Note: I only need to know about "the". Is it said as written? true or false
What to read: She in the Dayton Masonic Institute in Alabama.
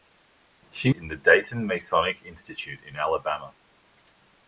true